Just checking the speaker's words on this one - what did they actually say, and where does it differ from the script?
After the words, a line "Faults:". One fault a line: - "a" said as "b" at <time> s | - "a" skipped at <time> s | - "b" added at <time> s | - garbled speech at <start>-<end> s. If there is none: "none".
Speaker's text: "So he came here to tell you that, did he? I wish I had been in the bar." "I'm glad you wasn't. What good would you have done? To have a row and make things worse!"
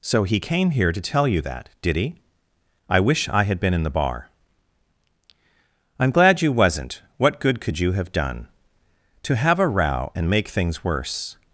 "So he came here to tell you that, did he? I wish I had been in the bar." "I'm glad you wasn't. What good could you have done? To have a row and make things worse!"
Faults:
- "would" said as "could" at 7.6 s